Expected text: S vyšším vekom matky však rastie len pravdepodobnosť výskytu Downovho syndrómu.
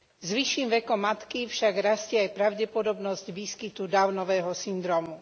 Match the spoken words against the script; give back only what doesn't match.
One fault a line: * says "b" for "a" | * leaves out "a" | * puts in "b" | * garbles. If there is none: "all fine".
* says "aj" for "len"